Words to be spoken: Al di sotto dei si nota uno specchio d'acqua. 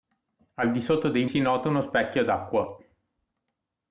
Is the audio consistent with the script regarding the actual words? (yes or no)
yes